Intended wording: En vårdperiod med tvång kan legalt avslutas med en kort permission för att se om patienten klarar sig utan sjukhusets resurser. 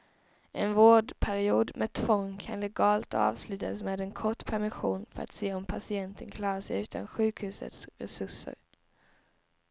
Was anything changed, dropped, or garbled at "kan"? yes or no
no